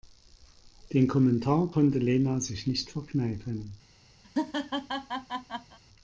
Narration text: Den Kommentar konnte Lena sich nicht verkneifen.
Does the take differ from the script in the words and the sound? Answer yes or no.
yes